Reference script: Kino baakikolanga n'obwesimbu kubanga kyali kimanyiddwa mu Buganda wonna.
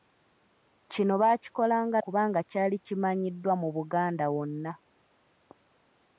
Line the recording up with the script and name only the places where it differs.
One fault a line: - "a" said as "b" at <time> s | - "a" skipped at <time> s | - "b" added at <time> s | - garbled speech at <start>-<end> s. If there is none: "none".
- "n'obwesimbu" skipped at 2.0 s